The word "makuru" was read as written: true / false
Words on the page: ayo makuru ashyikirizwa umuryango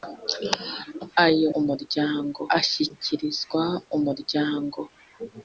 false